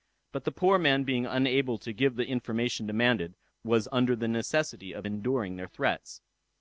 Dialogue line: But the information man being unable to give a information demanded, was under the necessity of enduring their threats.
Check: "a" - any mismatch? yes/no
yes